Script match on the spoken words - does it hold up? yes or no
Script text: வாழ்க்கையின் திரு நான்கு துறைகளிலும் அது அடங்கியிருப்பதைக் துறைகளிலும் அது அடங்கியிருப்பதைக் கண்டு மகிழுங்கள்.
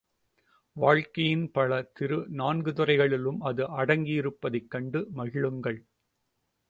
no